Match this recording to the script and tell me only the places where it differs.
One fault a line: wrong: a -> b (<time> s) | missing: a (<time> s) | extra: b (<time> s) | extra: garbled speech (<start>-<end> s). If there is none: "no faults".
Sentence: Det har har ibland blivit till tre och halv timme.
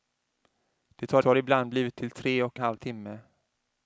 no faults